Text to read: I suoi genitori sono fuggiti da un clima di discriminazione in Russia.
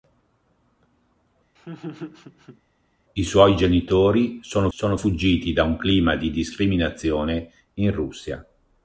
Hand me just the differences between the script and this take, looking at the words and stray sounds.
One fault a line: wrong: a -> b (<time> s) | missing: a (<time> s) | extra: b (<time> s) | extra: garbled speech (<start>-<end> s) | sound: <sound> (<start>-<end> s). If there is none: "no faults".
sound: laugh (1.6-2.6 s)
extra: sono (4.7 s)